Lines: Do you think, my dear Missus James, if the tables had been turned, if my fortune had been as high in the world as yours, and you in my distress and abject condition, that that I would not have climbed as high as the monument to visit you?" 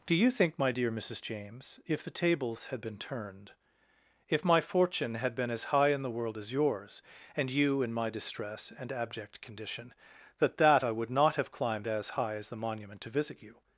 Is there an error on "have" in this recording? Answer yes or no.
no